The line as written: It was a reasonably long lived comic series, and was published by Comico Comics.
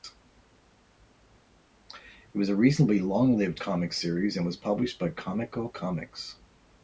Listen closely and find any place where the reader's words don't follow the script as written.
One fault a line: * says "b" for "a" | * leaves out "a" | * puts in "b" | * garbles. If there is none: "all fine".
all fine